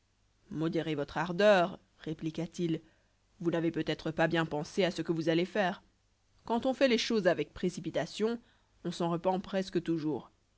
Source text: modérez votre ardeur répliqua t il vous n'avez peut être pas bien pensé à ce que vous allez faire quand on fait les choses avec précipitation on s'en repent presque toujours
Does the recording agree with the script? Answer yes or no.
yes